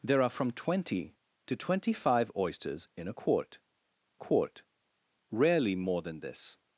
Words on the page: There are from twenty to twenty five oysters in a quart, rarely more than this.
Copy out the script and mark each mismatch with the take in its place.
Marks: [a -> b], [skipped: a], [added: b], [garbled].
There are from twenty to twenty five oysters in a quart, [added: quart] rarely more than this.